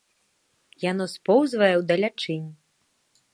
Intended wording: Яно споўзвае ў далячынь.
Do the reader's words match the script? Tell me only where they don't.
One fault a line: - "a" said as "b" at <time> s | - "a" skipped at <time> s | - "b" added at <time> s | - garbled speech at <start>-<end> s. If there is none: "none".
none